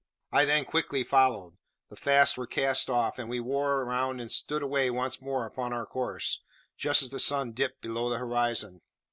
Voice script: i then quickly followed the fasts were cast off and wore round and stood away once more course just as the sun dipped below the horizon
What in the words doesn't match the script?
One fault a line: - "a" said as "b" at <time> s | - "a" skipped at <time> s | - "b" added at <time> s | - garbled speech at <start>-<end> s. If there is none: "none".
- "we" added at 3.3 s
- "upon our" added at 5.4 s